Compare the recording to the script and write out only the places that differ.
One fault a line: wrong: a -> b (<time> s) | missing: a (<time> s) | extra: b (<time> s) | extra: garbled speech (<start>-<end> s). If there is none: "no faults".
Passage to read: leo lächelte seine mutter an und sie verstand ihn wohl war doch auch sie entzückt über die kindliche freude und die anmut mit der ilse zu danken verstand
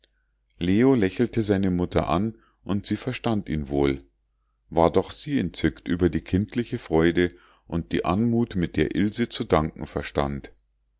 missing: auch (5.1 s)